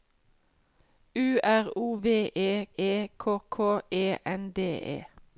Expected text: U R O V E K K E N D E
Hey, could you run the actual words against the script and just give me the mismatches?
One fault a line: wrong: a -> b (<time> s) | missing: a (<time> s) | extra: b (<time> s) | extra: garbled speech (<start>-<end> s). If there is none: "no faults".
extra: E (2.8 s)